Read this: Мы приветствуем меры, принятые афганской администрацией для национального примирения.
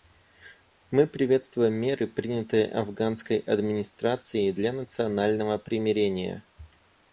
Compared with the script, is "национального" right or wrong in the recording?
right